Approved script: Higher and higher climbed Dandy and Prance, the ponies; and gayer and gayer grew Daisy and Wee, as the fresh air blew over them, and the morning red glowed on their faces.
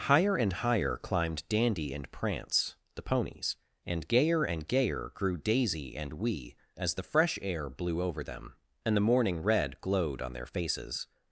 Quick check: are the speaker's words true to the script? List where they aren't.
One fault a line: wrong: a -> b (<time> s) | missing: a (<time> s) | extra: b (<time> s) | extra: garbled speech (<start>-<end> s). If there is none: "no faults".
no faults